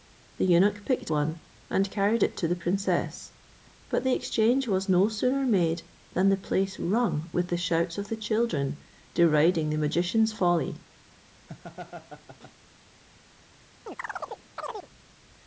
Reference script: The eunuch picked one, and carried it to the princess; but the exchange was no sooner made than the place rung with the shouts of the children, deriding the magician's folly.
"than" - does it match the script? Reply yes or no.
yes